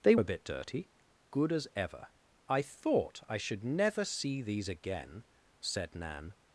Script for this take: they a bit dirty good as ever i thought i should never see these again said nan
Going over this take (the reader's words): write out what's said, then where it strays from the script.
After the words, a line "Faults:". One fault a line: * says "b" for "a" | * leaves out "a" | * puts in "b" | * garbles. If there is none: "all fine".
they a bit dirty good as ever i thought i should never see these again said nan
Faults:
all fine